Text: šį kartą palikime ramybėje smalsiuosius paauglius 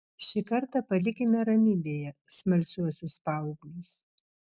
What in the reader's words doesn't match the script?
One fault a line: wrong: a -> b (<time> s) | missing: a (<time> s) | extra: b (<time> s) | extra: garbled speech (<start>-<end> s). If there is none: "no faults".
no faults